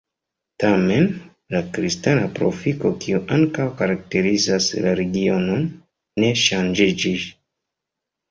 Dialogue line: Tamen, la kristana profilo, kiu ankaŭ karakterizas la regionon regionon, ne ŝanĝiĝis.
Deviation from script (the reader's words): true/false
true